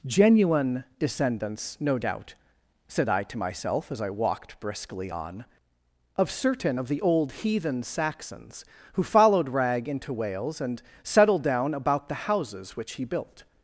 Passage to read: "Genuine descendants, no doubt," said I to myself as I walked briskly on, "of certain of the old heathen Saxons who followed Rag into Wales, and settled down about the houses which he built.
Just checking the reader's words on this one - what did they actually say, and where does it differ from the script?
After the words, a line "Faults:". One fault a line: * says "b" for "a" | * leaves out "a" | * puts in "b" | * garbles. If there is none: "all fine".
"Genuine descendants, no doubt," said I to myself as I walked briskly on, "of certain of the old heathen Saxons who followed Rag into Wales, and settled down about the houses which he built.
Faults:
all fine